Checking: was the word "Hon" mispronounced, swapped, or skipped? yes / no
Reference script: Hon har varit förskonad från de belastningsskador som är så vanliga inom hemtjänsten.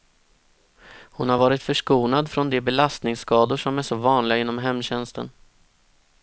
no